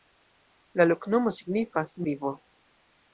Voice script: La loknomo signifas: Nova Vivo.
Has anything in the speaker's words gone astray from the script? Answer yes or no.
yes